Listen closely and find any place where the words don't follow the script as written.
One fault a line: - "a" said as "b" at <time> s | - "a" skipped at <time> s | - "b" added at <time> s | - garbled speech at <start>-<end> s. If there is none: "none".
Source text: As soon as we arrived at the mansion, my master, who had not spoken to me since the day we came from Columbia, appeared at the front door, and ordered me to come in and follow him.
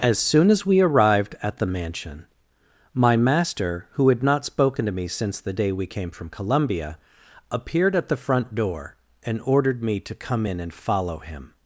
none